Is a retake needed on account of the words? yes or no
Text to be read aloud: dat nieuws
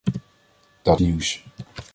no